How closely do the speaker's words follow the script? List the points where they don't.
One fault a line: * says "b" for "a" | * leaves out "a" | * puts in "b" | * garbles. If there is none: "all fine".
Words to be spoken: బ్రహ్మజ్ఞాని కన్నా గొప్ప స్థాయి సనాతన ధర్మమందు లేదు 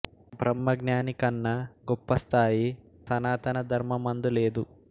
all fine